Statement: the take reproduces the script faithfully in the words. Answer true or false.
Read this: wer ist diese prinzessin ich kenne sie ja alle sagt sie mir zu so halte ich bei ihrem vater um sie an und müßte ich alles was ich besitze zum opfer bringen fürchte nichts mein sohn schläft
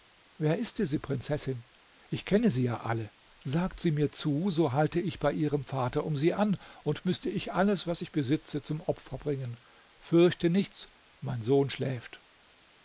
true